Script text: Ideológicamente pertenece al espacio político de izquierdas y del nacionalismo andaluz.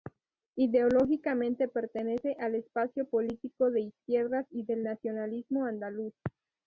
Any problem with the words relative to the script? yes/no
no